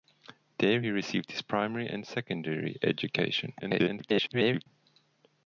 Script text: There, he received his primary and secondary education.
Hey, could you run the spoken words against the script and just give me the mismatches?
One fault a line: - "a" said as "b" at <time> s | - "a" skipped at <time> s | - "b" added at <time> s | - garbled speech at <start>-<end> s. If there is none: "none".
- garbled speech at 3.6-4.7 s